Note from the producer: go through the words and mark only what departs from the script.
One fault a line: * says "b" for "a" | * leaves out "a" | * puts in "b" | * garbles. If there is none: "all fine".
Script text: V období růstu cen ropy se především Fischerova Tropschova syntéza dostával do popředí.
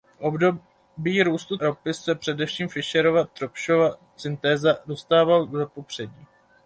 * leaves out "cen"